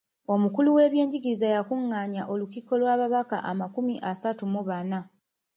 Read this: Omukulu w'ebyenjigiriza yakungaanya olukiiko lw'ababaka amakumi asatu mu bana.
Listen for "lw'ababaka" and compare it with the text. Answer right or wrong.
right